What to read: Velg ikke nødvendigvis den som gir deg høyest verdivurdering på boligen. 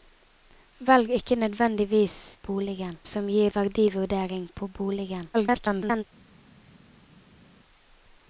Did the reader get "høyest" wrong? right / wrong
wrong